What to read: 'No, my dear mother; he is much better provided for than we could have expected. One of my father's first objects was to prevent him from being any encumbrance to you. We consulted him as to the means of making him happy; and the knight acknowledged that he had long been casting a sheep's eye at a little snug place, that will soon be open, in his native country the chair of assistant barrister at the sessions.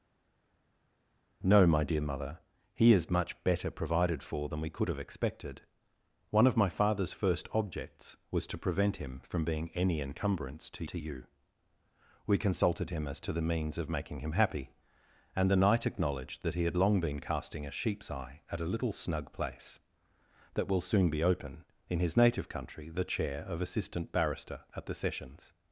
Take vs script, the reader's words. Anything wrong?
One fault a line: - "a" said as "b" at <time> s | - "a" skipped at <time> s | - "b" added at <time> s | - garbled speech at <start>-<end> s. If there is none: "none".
- "to" added at 10.8 s